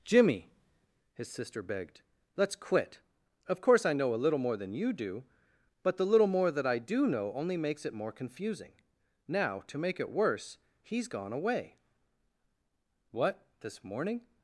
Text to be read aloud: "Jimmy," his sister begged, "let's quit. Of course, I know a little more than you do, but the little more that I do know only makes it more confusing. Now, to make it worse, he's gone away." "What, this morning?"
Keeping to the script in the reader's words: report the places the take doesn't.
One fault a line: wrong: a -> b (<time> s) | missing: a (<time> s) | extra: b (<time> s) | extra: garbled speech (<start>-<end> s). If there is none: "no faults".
no faults